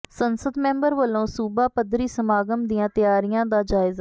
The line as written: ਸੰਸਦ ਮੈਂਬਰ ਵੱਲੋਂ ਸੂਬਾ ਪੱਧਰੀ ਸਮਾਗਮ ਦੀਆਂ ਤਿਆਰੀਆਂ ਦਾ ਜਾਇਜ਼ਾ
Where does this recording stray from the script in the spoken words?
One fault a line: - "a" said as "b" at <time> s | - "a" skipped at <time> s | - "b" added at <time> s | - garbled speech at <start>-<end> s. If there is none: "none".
none